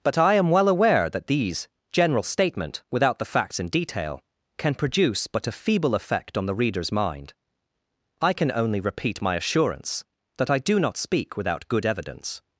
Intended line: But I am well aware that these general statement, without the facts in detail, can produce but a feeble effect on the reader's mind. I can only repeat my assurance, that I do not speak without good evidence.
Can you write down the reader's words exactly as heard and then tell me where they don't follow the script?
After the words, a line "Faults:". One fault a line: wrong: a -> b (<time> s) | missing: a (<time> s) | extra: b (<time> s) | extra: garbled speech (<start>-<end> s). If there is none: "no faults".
But I am well aware that these general statement, without the facts in detail, can produce but a feeble effect on the reader's mind. I can only repeat my assurance, that I do not speak without good evidence.
Faults:
no faults